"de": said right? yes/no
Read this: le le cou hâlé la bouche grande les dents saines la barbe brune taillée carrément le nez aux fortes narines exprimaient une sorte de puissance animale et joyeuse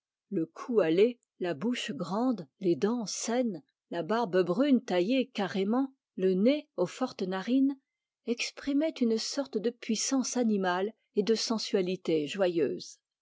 yes